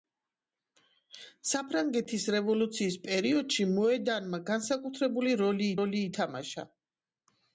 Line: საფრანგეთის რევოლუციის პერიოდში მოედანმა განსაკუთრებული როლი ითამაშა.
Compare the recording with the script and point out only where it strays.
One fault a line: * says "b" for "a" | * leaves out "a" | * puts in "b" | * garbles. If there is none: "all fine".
* puts in "როლი"